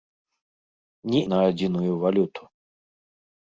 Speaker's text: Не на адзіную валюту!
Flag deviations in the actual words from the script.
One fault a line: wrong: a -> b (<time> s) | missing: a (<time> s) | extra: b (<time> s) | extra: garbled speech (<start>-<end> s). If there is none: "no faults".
no faults